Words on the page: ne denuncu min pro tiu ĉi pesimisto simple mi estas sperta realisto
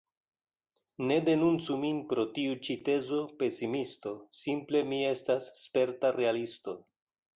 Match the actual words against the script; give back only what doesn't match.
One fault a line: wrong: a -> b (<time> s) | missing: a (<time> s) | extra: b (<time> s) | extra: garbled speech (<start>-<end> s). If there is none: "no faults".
extra: tezo (2.9 s)